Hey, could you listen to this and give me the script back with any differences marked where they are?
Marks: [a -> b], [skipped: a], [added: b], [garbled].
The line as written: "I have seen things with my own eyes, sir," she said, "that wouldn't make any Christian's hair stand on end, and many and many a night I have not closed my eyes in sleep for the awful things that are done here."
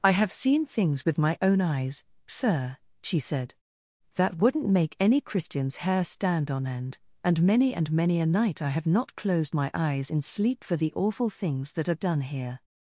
"I have seen things with my own eyes, sir," she said, "that wouldn't make any Christian's hair stand on end, and many and many a night I have not closed my eyes in sleep for the awful things that are done here."